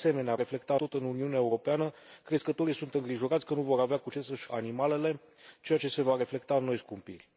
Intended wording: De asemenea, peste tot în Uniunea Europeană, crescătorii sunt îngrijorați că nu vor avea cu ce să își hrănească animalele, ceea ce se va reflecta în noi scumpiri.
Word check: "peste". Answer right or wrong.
wrong